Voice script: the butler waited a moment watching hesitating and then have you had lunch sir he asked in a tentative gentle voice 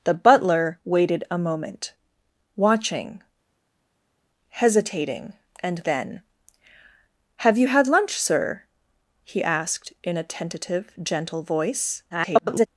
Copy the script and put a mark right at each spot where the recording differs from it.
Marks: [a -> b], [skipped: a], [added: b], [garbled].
the butler waited a moment watching hesitating and then have you had lunch sir he asked in a tentative gentle voice [garbled]